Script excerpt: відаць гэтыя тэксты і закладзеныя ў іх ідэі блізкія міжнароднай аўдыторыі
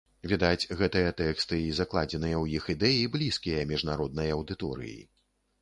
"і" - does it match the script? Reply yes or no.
yes